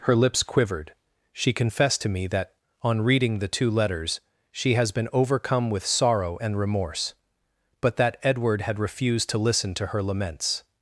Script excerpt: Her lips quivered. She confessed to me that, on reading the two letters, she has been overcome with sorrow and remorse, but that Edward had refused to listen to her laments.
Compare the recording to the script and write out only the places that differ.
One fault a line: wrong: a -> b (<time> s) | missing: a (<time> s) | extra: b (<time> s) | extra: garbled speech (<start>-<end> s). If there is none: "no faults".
no faults